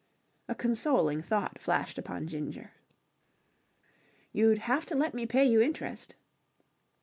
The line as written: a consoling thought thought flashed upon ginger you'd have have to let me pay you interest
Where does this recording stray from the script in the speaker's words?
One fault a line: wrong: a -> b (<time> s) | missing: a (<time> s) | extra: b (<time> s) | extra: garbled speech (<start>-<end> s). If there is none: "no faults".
missing: thought (1.6 s)
missing: have (4.8 s)